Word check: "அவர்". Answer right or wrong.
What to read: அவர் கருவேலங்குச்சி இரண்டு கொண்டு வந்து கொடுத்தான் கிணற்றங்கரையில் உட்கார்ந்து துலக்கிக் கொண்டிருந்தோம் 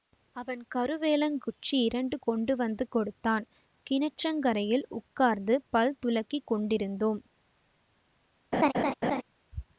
wrong